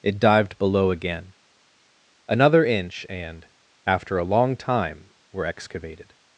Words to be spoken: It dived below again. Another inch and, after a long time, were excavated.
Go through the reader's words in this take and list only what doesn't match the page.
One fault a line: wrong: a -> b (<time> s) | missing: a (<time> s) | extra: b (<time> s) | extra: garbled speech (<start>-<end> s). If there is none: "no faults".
no faults